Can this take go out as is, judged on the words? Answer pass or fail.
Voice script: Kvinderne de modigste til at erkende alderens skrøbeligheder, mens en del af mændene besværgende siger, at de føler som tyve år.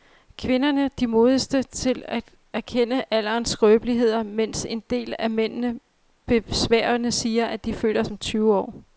pass